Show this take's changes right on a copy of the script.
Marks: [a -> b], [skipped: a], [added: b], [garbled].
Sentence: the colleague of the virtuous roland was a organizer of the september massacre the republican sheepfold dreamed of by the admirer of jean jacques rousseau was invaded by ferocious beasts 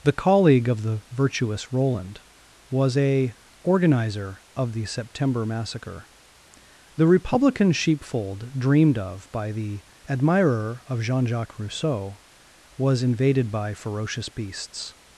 the colleague of the virtuous roland was a organizer of the september massacre the republican sheepfold dreamed of by the admirer of jean jacques rousseau was invaded by ferocious beasts